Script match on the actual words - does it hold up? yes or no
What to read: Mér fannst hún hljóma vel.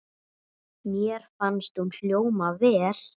yes